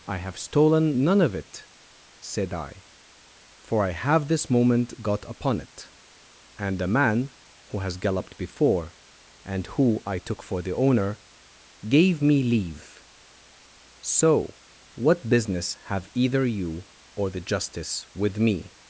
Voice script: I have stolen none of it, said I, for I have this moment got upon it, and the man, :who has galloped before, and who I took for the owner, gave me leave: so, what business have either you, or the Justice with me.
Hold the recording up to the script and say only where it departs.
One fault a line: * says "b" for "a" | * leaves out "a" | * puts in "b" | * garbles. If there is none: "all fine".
all fine